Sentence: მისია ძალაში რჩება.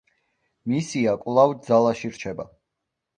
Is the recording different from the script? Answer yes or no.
yes